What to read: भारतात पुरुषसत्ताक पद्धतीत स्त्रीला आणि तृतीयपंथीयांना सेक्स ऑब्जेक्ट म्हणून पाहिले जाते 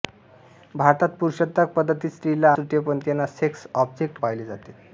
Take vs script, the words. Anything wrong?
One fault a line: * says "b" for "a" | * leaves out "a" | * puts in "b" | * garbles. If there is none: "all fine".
* leaves out "आणि"
* leaves out "म्हणून"